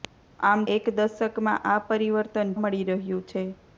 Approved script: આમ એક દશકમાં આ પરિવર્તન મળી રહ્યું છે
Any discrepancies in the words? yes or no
no